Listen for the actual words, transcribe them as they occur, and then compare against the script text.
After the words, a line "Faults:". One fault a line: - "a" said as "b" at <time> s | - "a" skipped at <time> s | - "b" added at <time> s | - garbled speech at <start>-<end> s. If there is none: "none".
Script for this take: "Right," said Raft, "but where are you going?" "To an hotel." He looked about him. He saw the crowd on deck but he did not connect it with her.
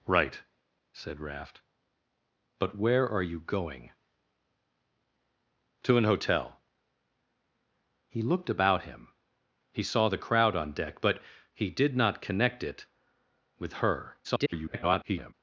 "Right," said Raft, "but where are you going?" "To an hotel." He looked about him. He saw the crowd on deck but he did not connect it with her. [garbled]
Faults:
- garbled speech at 14.2-15.3 s